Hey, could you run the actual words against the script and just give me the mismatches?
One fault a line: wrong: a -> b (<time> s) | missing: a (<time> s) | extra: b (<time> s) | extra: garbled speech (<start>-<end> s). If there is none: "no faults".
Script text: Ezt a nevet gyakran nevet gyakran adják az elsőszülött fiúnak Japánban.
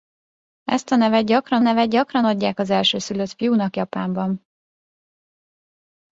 no faults